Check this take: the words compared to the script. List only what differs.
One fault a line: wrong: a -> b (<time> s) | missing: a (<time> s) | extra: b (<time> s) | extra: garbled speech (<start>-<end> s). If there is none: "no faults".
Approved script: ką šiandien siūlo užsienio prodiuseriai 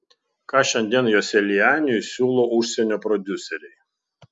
extra: joselianiui (1.1 s)